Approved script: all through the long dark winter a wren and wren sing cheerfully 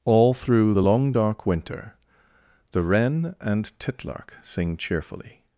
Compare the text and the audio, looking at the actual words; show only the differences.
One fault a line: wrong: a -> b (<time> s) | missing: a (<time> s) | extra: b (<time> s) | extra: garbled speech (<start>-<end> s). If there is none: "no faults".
wrong: a -> the (2.7 s)
wrong: wren -> titlark (3.8 s)